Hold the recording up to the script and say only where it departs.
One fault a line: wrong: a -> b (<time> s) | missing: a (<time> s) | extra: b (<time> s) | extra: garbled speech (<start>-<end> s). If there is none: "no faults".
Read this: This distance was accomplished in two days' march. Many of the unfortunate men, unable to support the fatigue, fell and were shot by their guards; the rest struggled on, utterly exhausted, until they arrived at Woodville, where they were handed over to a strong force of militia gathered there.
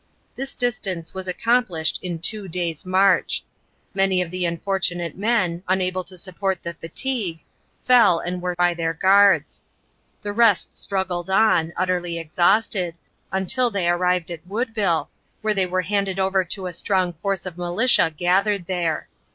missing: shot (8.6 s)